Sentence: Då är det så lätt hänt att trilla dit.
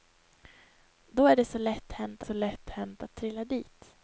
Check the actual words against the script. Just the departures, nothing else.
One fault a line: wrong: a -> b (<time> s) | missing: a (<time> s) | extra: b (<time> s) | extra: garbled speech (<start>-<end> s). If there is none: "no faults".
extra: så lätt hänt (2.2 s)